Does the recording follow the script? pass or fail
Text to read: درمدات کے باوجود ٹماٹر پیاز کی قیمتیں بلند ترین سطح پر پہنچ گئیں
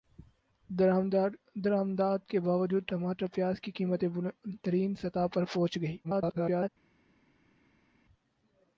fail